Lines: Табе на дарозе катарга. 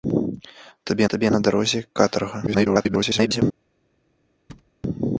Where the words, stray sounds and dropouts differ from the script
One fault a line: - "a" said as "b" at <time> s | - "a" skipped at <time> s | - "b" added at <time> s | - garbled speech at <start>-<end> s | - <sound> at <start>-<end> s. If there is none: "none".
- "табе" added at 1.1 s
- garbled speech at 2.5-3.4 s
- thud at 4.5-4.7 s